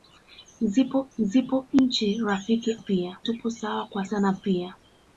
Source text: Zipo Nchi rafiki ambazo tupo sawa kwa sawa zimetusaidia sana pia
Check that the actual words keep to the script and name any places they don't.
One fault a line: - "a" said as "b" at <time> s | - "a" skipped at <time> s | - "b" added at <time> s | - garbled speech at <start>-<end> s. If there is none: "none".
- "zipo" added at 1.2 s
- "ambazo" said as "pia" at 2.7 s
- "sawa zimetusaidia" skipped at 4.0 s